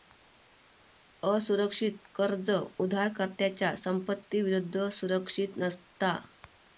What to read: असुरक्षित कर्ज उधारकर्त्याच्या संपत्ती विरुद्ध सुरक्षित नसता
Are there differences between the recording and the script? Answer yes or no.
no